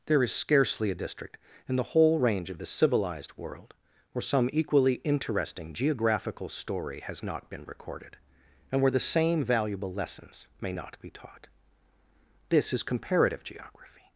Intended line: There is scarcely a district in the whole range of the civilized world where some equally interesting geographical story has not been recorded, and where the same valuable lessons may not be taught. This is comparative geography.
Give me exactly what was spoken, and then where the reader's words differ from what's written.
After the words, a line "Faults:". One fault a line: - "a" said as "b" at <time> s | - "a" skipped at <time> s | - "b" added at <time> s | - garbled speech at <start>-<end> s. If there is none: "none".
There is scarcely a district in the whole range of the civilized world where some equally interesting geographical story has not been recorded, and where the same valuable lessons may not be taught. This is comparative geography.
Faults:
none